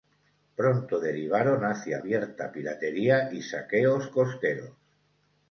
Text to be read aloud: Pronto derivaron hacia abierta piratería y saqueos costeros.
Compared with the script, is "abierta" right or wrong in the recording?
right